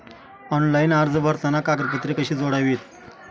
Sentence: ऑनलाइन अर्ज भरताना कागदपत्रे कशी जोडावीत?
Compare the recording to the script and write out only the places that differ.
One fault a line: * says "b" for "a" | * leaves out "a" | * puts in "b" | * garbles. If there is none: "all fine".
all fine